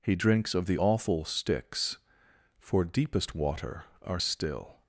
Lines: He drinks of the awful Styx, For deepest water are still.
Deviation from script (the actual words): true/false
false